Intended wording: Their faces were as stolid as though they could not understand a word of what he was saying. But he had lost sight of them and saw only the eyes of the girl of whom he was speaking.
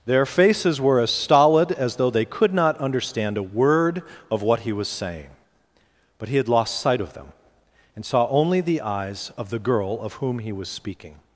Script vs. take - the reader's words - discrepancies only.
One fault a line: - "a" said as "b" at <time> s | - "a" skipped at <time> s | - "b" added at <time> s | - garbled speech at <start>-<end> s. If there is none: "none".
none